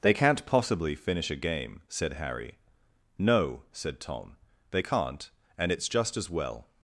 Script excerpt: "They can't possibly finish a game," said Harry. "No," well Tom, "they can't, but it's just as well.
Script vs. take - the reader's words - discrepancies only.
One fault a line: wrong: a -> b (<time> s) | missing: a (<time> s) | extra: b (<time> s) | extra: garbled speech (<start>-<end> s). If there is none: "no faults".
wrong: well -> said (3.7 s)
wrong: but -> and (5.6 s)